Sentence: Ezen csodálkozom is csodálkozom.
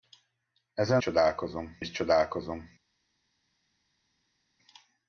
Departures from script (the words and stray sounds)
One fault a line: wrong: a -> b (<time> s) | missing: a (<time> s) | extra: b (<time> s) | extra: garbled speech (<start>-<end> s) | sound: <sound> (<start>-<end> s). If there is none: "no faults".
no faults